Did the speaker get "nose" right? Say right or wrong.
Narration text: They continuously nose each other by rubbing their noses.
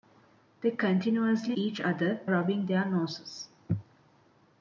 wrong